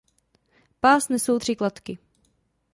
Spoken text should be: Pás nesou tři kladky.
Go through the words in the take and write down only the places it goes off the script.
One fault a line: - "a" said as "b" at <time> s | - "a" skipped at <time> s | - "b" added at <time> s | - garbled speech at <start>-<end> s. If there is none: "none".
none